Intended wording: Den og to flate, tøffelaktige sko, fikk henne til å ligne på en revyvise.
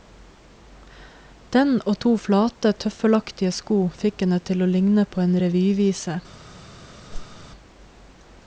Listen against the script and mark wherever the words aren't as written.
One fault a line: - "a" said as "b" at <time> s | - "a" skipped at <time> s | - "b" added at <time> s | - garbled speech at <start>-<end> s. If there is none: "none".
none